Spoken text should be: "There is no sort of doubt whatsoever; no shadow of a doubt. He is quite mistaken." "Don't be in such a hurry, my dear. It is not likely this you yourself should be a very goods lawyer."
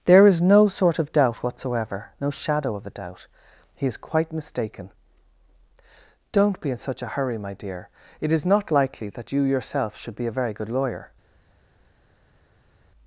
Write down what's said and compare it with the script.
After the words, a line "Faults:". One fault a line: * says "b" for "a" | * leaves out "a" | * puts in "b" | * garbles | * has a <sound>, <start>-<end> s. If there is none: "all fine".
"There is no sort of doubt whatsoever; no shadow of a doubt. He is quite mistaken." "Don't be in such a hurry, my dear. It is not likely that you yourself should be a very good lawyer."
Faults:
* says "that" for "this"
* says "good" for "goods"